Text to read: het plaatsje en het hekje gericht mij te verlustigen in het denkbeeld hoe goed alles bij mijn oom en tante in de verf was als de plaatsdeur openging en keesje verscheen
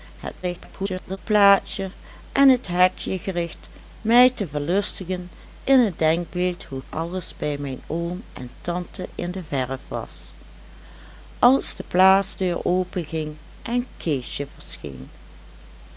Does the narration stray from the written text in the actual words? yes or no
yes